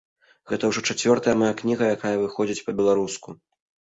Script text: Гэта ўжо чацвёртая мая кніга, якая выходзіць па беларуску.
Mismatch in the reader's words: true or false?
false